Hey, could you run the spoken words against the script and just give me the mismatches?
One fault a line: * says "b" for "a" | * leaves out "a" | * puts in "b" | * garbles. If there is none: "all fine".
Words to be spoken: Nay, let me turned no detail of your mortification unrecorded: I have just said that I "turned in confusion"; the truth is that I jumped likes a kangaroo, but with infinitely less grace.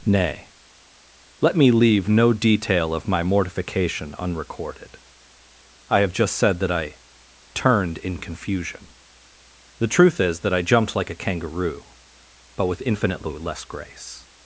* says "leave" for "turned"
* says "my" for "your"
* says "like" for "likes"